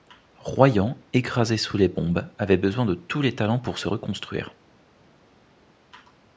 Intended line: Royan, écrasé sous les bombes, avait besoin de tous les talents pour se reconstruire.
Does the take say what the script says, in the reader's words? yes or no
yes